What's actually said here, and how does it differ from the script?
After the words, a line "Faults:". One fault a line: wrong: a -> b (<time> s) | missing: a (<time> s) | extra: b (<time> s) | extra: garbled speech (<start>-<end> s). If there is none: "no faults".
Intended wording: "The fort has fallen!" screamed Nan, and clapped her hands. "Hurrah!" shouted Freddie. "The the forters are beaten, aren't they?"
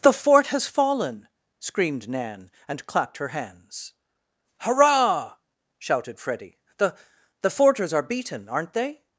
"The fort has fallen!" screamed Nan, and clapped her hands. "Hurrah!" shouted Freddie. "The the forters are beaten, aren't they?"
Faults:
no faults